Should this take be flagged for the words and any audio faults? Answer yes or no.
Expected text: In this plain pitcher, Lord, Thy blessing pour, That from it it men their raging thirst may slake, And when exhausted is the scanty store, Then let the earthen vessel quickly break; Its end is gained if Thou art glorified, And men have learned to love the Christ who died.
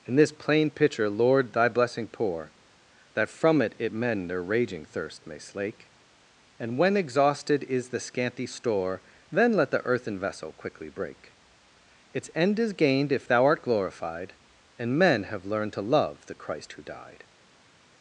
no